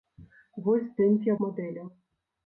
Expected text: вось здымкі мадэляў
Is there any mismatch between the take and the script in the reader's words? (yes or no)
no